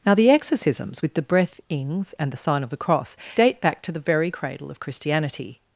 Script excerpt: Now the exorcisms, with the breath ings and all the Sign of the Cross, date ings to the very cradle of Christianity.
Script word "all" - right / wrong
wrong